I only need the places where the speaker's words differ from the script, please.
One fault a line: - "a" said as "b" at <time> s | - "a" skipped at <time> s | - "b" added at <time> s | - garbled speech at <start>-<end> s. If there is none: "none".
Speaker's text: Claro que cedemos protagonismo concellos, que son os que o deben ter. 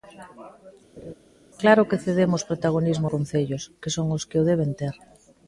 none